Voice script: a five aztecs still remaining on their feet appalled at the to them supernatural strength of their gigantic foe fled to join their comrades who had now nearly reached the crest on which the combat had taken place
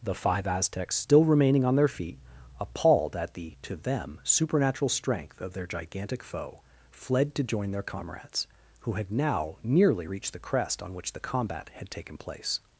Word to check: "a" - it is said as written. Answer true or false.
false